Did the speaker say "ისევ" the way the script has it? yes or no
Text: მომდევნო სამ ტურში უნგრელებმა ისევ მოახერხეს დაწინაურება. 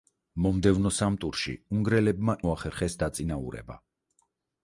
no